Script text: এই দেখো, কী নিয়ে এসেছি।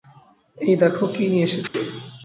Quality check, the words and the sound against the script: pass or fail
fail